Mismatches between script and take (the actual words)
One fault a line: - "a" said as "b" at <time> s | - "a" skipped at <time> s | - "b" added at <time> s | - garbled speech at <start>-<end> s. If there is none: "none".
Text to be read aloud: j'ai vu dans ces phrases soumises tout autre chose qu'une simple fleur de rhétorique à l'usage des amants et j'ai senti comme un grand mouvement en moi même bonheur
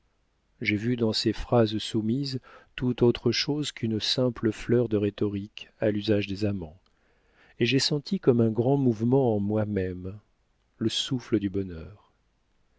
- "le souffle du" added at 10.8 s